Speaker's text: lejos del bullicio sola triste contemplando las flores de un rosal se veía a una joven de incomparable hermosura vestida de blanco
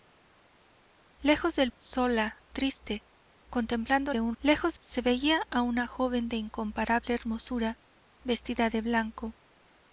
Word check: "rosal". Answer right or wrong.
wrong